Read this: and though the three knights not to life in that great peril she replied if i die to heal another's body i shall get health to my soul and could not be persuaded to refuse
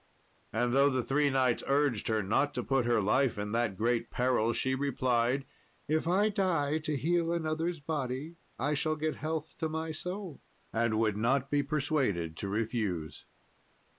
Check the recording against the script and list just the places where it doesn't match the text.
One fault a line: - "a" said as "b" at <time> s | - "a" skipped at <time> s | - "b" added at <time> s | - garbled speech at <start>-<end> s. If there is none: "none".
- "urged her" added at 1.7 s
- "put her" added at 2.6 s
- "could" said as "would" at 11.0 s